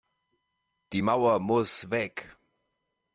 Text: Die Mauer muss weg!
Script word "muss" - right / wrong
right